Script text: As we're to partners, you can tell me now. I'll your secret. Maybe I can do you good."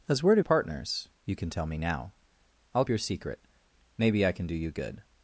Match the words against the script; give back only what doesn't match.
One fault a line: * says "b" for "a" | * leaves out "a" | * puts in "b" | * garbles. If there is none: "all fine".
all fine